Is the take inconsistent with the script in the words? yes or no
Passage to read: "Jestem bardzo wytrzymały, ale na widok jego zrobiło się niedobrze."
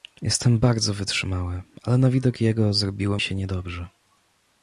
no